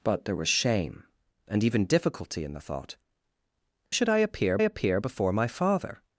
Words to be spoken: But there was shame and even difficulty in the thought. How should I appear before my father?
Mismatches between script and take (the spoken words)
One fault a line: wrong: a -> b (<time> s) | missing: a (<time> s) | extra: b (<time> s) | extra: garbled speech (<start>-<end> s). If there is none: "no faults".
missing: How (3.0 s)
extra: appear (4.6 s)